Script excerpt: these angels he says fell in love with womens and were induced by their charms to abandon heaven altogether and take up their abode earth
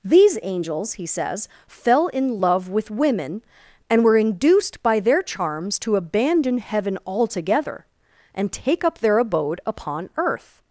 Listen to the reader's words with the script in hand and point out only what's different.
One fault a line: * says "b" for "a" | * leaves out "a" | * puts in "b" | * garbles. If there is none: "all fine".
* says "women" for "womens"
* puts in "upon"